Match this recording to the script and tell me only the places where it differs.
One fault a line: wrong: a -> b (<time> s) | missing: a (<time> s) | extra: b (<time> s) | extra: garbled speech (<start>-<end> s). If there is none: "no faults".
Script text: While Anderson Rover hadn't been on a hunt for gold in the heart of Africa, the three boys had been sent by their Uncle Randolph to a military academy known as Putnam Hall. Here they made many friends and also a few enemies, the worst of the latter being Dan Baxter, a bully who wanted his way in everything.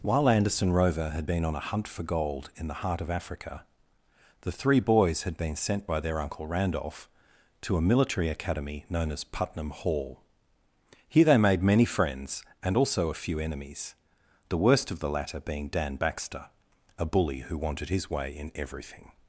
wrong: hadn't -> had (1.1 s)